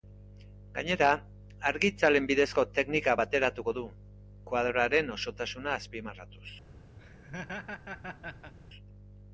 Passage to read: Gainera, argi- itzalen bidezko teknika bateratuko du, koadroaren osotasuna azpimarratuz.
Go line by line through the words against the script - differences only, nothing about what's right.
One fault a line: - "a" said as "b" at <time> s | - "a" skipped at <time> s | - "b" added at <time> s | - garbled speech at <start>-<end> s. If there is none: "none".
none